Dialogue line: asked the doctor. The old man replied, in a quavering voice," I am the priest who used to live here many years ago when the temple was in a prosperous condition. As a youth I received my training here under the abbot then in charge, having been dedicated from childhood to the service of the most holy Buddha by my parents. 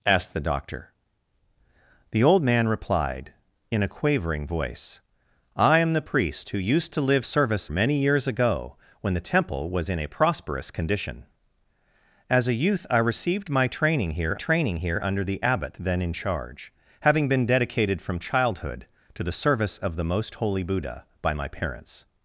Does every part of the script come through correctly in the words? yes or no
no